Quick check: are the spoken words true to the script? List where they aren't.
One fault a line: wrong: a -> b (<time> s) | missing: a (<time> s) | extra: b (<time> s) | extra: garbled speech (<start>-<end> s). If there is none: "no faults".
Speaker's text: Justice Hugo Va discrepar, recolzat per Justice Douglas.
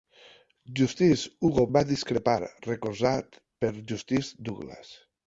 no faults